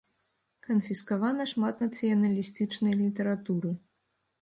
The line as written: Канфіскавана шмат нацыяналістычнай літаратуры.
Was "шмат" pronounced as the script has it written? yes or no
yes